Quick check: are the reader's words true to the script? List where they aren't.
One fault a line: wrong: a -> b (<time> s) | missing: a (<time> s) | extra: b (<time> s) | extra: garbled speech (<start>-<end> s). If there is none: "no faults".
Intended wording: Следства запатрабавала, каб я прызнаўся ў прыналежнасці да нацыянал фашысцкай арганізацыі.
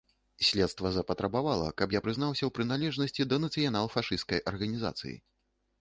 no faults